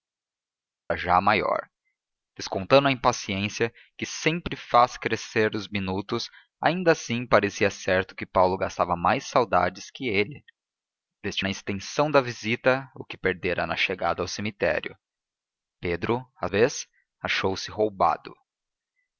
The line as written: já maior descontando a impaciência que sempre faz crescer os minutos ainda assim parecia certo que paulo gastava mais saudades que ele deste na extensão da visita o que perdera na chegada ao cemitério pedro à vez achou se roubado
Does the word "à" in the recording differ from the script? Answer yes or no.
no